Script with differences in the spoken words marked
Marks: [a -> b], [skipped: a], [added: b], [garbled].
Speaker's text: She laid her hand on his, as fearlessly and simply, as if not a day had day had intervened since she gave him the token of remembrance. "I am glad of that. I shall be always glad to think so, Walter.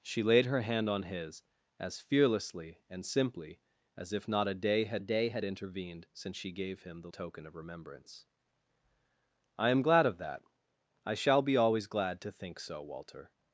She laid her hand on his, as fearlessly and simply, as if not a day had day had intervened since she gave him the token of remembrance. "I am glad of that. I shall be always glad to think so, Walter.